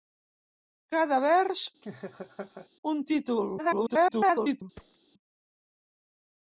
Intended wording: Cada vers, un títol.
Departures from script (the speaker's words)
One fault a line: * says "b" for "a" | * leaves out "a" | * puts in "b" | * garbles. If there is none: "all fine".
* garbles